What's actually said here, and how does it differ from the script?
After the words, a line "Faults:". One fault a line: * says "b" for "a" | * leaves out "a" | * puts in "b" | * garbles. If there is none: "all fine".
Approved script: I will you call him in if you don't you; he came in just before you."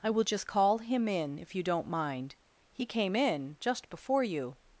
I will just call him in if you don't mind; he came in just before you."
Faults:
* says "just" for "you"
* says "mind" for "you"